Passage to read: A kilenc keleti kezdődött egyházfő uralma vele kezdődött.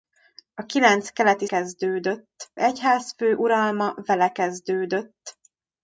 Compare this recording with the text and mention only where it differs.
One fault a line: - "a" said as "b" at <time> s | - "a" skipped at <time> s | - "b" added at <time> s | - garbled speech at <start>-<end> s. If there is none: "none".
none